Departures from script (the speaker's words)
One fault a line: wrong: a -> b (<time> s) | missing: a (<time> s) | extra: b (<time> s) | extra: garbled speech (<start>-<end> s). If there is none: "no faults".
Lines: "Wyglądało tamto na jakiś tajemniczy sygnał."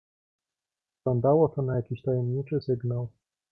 wrong: tamto -> to (1.5 s)